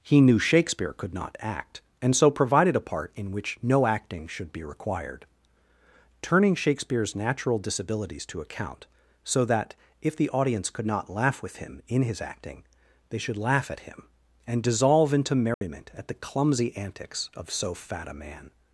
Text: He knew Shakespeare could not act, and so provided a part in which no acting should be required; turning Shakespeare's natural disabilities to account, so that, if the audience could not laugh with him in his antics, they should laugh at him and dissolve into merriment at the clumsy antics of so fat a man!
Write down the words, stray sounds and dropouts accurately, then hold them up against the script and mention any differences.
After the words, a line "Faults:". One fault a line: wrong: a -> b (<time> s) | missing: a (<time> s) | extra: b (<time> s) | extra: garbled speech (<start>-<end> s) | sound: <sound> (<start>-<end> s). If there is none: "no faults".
He knew Shakespeare could not act, and so provided a part in which no acting should be required; turning Shakespeare's natural disabilities to account, so that, if the audience could not laugh with him in his acting, they should laugh at him and dissolve into merriment at the clumsy antics of so fat a man!
Faults:
wrong: antics -> acting (12.2 s)
sound: dropout (15.5-15.6 s)